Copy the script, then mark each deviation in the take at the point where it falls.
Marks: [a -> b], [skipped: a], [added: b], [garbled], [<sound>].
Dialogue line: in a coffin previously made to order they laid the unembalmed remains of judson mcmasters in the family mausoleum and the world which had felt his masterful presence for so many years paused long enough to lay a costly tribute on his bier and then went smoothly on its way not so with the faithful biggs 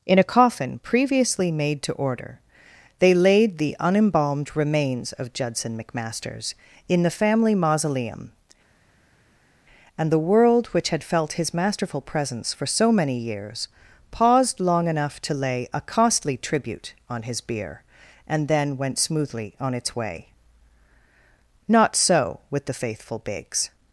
in a coffin previously made to order they laid the unembalmed remains of judson mcmasters in the family mausoleum and the world which had felt his masterful presence for so many years paused long enough to lay a costly tribute on his bier and then went smoothly on its way not so with the faithful biggs